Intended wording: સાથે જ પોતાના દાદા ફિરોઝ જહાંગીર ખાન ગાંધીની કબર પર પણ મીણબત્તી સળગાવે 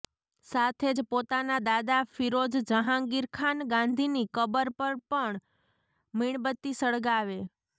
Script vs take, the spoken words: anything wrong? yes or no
no